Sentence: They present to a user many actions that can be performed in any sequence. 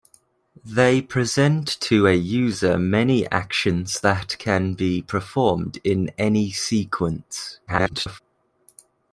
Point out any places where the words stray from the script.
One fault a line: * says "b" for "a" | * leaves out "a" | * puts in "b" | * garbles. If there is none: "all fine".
* garbles